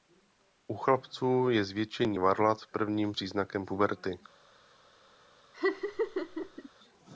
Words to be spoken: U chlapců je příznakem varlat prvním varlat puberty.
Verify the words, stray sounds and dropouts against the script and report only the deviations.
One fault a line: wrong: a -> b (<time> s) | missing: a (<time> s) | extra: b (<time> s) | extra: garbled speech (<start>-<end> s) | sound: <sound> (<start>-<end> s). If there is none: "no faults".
wrong: příznakem -> zvětšení (1.6 s)
wrong: varlat -> příznakem (3.1 s)
sound: laugh (5.5-6.7 s)